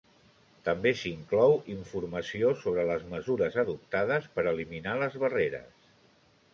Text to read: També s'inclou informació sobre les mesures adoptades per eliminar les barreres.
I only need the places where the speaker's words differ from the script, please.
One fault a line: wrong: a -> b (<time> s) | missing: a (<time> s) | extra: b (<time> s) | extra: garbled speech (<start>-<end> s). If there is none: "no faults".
no faults